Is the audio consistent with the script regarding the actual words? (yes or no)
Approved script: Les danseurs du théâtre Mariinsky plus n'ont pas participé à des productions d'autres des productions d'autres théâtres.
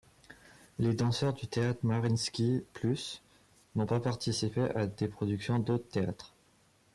no